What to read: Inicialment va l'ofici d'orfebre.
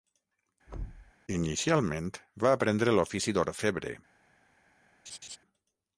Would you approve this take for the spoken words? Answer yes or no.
no